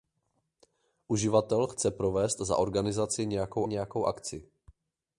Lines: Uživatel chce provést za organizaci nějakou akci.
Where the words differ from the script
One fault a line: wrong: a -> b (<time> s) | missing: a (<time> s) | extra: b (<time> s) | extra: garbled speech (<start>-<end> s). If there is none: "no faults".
extra: nějakou (3.7 s)